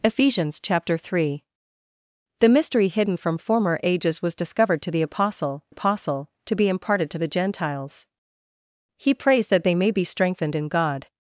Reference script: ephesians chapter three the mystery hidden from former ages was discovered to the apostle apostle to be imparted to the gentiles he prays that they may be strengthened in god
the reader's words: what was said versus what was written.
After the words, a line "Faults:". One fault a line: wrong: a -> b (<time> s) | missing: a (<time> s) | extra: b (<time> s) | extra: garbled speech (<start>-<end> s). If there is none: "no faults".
ephesians chapter three the mystery hidden from former ages was discovered to the apostle apostle to be imparted to the gentiles he prays that they may be strengthened in god
Faults:
no faults